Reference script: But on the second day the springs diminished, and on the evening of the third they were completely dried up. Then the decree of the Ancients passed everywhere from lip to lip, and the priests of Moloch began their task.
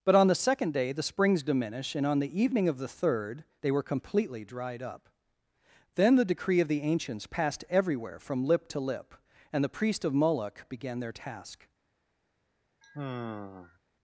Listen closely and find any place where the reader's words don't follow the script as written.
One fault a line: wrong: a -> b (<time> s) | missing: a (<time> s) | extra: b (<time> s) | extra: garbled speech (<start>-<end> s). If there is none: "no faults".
wrong: diminished -> diminish (1.4 s)
wrong: priests -> priest (9.7 s)